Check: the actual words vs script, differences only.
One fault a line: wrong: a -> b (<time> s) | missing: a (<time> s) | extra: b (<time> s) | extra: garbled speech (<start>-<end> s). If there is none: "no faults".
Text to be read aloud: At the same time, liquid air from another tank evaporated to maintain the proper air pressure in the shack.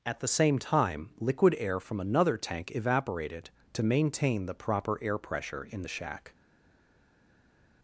no faults